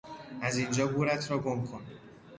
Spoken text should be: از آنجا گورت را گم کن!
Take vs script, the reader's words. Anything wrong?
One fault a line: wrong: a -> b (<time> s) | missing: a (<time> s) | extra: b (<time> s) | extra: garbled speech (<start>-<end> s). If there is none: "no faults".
wrong: آنجا -> اینجا (0.6 s)